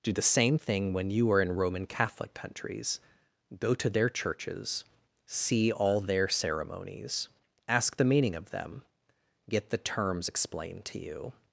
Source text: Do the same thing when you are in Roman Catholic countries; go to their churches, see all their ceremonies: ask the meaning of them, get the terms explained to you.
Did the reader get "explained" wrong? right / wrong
right